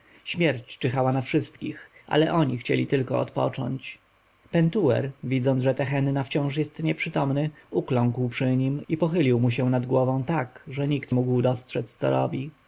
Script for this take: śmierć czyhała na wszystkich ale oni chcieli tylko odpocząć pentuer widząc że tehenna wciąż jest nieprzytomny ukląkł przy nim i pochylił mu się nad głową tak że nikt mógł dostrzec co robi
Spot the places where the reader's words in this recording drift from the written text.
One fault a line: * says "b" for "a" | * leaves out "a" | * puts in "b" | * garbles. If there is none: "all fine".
all fine